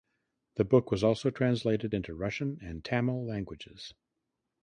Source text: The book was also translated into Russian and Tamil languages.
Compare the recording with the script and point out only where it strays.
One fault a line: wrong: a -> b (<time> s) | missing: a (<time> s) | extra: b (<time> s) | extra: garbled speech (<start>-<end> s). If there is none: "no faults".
no faults